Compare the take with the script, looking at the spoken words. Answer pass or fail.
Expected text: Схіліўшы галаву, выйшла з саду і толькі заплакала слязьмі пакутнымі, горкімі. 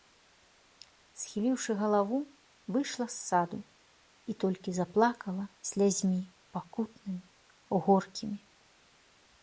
pass